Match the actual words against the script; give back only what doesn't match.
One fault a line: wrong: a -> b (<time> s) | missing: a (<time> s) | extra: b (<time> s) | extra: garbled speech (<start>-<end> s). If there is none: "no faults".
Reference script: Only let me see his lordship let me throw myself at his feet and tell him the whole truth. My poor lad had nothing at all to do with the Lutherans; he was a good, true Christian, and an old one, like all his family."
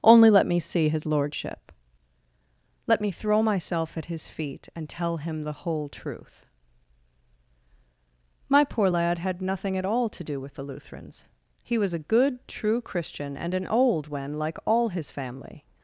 wrong: one -> when (14.1 s)